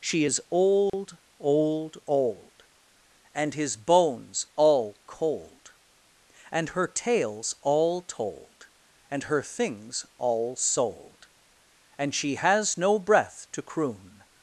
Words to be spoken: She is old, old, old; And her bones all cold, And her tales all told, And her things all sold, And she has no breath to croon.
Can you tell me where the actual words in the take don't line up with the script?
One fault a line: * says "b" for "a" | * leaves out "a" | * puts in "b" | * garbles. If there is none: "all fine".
* says "his" for "her"